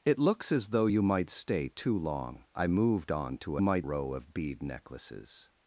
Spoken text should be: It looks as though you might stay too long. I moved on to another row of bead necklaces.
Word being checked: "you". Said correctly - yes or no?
yes